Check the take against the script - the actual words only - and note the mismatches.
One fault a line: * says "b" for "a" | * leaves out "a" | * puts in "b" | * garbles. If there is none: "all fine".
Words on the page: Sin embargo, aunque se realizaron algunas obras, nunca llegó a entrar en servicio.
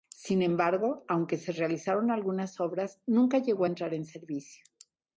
all fine